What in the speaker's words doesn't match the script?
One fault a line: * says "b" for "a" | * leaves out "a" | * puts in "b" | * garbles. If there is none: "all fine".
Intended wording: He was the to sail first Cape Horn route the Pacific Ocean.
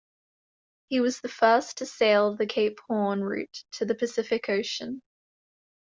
* puts in "first"
* says "the" for "first"
* puts in "to"